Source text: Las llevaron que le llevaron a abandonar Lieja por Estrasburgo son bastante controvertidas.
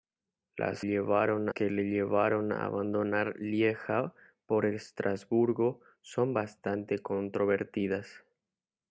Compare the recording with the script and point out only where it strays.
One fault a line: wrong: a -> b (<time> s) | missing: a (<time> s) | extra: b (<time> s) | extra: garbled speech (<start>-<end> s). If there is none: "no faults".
no faults